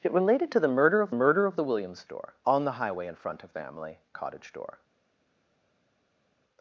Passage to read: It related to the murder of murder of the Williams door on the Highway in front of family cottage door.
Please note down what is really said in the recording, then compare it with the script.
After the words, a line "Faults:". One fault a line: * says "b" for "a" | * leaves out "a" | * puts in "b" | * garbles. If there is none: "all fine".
It related to the murder of murder of the Williams door on the Highway in front of family cottage door.
Faults:
all fine